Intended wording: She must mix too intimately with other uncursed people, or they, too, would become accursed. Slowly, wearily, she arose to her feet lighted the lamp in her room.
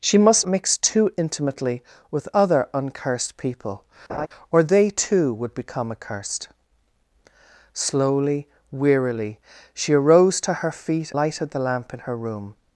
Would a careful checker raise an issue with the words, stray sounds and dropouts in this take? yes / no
yes